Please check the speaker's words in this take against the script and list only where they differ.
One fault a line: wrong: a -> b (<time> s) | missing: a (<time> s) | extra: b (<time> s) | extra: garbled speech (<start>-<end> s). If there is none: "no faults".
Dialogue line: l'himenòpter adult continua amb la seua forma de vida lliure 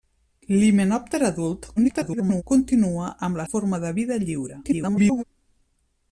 extra: garbled speech (1.8-2.4 s)
missing: seua (3.5 s)
extra: garbled speech (4.6-5.2 s)